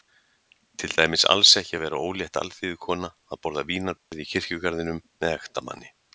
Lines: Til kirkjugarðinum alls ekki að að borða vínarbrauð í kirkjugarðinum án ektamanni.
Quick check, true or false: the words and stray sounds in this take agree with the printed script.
false